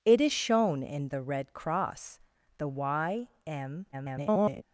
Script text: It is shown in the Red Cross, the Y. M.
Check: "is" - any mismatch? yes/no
no